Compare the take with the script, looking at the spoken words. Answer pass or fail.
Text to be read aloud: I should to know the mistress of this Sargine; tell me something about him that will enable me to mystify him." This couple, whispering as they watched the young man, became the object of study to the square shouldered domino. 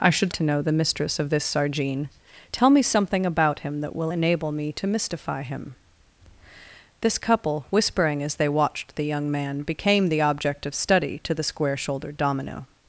pass